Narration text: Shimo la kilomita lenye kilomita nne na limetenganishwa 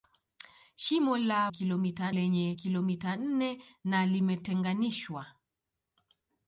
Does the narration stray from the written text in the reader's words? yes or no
no